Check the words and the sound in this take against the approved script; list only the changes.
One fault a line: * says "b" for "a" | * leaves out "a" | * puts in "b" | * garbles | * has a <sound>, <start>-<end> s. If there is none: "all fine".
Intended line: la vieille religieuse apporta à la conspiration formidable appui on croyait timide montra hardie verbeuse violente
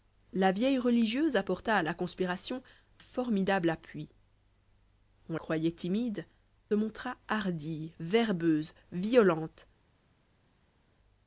all fine